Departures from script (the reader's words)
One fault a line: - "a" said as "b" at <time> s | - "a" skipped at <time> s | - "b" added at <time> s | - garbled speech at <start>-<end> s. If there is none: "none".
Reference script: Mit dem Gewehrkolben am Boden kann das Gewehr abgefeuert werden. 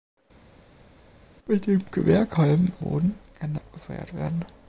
- "am" skipped at 2.7 s
- "das Gewehr" skipped at 3.5 s